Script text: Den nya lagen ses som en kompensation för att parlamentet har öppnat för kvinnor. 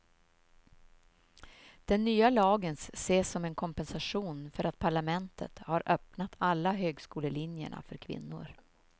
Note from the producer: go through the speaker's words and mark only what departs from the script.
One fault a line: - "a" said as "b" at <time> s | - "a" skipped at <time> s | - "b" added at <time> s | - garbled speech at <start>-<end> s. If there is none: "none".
- "alla högskolelinjerna" added at 6.4 s